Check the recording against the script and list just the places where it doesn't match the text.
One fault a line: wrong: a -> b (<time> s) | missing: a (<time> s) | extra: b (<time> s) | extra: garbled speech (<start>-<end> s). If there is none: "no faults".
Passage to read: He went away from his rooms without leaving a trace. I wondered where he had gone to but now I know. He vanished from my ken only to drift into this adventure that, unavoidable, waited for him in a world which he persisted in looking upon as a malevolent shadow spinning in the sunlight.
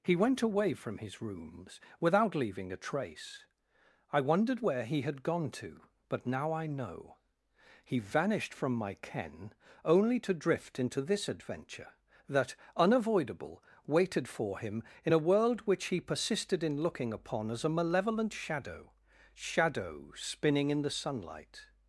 extra: shadow (19.3 s)